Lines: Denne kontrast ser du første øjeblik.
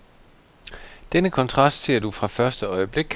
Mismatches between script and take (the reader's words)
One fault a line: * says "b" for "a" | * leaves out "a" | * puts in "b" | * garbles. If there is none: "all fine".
* puts in "fra"